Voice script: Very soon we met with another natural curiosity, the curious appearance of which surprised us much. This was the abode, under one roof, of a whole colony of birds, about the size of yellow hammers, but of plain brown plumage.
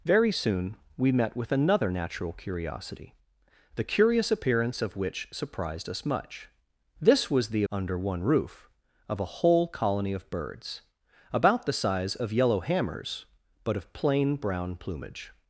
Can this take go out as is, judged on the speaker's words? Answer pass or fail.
fail